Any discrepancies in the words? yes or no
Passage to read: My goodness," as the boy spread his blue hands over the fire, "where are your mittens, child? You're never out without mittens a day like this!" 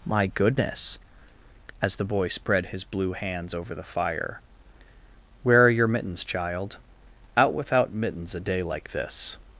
yes